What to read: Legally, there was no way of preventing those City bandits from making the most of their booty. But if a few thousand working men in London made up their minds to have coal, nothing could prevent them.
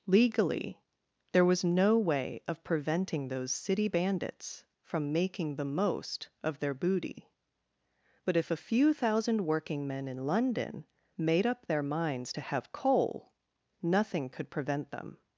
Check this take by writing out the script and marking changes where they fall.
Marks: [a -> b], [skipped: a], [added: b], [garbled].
Legally, there was no way of preventing those City bandits from making the most of their booty. But if a few thousand working men in London made up their minds to have coal, nothing could prevent them.